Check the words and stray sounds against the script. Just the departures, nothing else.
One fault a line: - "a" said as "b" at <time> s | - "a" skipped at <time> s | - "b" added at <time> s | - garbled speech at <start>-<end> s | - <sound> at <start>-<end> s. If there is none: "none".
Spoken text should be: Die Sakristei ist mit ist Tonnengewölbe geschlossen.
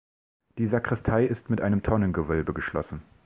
- "ist" said as "einem" at 1.6 s